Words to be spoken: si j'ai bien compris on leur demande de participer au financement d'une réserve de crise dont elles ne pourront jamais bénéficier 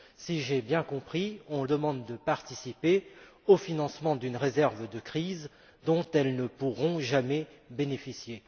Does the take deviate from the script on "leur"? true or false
true